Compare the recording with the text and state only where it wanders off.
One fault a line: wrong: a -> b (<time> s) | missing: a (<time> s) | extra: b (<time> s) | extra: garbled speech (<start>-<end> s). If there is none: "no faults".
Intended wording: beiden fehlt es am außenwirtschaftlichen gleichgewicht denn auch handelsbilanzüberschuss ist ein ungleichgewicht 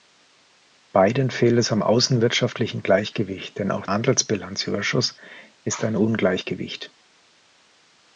no faults